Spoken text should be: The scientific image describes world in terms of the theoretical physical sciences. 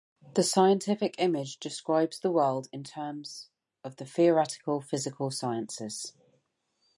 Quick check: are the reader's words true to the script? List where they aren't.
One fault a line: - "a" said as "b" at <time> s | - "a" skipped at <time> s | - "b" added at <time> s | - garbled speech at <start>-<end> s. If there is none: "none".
- "the" added at 2.2 s